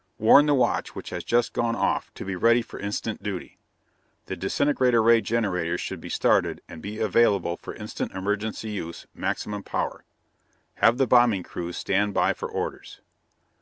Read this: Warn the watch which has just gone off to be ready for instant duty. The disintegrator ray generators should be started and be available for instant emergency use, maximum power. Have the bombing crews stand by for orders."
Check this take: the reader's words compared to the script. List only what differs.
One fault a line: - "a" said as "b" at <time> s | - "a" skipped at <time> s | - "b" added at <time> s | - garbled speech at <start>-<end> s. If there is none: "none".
none